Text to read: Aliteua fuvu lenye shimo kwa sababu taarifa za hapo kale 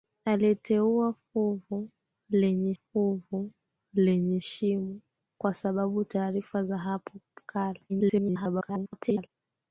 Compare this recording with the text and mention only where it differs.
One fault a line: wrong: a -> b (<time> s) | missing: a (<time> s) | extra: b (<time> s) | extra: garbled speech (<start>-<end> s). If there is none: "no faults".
extra: fuvu lenye (2.7 s)
extra: garbled speech (7.9-9.3 s)